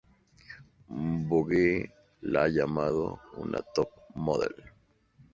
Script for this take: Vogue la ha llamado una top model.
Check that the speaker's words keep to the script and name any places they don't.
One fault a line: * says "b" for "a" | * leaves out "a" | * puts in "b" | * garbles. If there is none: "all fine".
all fine